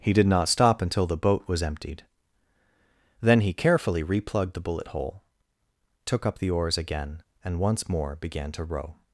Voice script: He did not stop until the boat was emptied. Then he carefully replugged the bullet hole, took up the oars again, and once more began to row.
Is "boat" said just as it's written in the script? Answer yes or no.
yes